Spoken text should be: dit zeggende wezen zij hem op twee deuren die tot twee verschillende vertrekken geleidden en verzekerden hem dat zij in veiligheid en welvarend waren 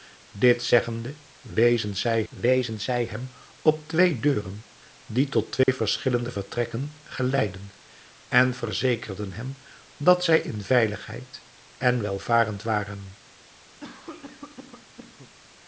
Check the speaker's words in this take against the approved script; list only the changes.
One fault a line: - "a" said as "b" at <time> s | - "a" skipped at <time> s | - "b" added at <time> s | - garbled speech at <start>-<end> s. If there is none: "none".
- "wezen zij" added at 2.3 s